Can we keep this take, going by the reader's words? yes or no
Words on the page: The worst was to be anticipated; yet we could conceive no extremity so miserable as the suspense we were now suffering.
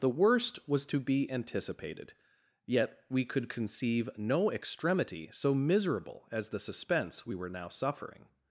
yes